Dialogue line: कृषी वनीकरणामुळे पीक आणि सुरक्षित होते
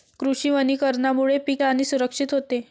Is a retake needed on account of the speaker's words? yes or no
no